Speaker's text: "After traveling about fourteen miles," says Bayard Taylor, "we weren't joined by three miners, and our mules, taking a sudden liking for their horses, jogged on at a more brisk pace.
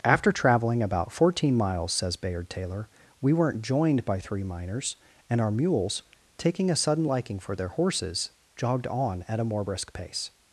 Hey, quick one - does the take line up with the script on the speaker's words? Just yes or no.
yes